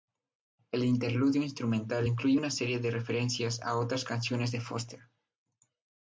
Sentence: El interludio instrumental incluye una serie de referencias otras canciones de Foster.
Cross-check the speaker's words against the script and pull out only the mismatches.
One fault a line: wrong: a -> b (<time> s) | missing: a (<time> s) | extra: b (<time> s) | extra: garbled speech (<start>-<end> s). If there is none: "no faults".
extra: a (3.6 s)